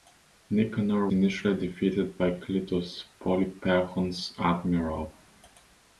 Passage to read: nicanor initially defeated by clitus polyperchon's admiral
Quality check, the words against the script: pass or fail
pass